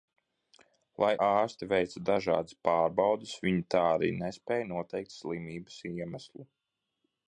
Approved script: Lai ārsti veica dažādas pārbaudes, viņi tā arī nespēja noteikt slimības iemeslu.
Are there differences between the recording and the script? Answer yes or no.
no